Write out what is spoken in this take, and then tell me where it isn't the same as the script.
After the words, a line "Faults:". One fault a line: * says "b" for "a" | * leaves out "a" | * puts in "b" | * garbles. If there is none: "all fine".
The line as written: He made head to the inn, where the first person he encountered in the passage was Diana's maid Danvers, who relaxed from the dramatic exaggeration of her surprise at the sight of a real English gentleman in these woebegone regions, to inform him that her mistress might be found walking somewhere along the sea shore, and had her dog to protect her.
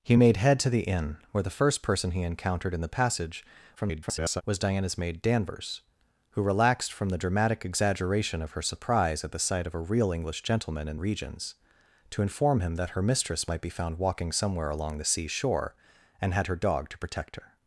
He made head to the inn, where the first person he encountered in the passage [garbled] was Diana's maid Danvers, who relaxed from the dramatic exaggeration of her surprise at the sight of a real English gentleman in regions, to inform him that her mistress might be found walking somewhere along the sea shore, and had her dog to protect her.
Faults:
* garbles
* leaves out "these woebegone"